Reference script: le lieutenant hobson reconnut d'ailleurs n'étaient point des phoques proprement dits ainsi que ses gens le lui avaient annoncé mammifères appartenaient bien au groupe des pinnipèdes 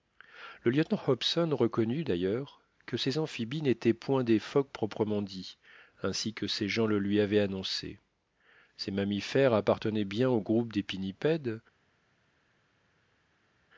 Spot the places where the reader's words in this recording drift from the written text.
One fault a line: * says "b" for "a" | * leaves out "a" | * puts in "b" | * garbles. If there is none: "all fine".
* puts in "que ces amphibies"
* puts in "ces"